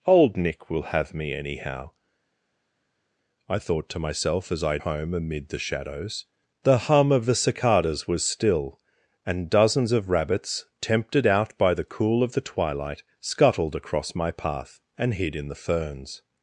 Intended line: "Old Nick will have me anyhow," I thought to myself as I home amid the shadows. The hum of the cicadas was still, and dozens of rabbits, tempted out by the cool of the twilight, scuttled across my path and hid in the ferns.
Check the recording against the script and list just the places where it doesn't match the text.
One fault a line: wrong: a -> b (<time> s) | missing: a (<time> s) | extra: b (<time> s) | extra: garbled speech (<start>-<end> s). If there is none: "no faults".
no faults